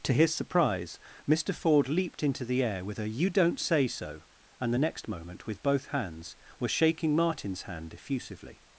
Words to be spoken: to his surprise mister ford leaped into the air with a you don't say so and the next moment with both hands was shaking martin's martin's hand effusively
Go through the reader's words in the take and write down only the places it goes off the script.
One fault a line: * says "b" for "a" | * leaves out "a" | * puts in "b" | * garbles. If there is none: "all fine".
* leaves out "martin's"